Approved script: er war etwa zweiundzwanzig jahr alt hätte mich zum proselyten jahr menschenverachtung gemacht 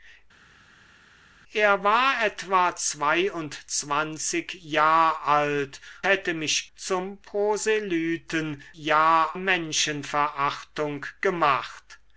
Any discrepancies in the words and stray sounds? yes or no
no